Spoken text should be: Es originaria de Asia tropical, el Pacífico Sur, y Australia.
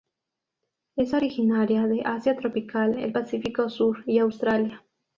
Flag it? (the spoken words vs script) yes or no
no